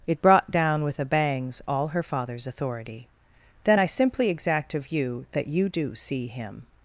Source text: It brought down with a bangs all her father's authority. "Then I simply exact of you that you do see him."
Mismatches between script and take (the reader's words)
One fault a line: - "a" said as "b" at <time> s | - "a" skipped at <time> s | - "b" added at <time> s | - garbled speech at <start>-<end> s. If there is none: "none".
none